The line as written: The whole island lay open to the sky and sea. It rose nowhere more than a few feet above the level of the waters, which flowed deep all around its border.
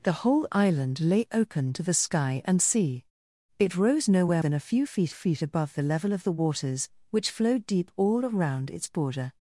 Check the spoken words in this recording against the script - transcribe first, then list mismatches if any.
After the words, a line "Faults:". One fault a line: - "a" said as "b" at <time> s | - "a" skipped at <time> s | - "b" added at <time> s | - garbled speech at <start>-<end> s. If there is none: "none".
The whole island lay open to the sky and sea. It rose nowhere than a few feet feet above the level of the waters, which flowed deep all around its border.
Faults:
- "more" skipped at 4.4 s
- "feet" added at 5.1 s